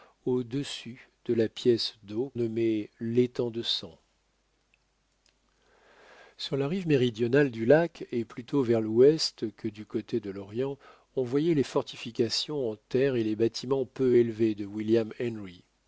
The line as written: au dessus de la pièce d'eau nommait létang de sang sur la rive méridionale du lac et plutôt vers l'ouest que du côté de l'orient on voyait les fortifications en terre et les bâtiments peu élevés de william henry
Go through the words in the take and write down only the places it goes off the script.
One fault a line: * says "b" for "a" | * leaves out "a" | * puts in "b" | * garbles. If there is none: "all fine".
all fine